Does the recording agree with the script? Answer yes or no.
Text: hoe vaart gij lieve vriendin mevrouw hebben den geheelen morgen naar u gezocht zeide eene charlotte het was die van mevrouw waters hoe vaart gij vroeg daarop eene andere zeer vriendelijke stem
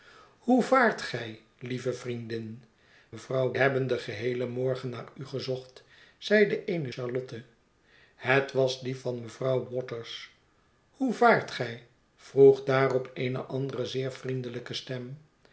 yes